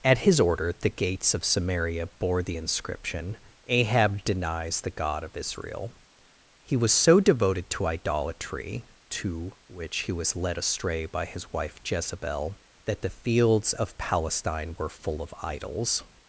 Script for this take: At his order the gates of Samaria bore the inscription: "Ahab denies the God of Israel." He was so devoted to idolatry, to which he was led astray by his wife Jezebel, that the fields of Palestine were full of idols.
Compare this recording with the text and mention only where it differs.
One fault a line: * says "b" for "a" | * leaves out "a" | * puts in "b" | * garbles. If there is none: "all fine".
all fine